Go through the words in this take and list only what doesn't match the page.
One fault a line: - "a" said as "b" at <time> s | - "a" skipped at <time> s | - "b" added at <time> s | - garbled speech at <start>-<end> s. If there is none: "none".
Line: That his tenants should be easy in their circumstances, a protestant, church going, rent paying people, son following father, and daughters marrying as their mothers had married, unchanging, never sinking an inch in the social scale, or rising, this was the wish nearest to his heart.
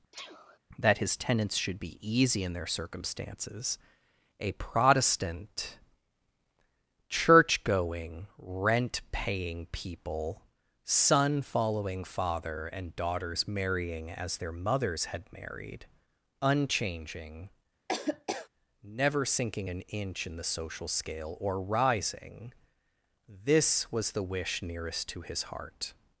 none